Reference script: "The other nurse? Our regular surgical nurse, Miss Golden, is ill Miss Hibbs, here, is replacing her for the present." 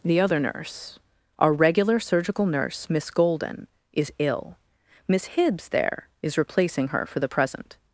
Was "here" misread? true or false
true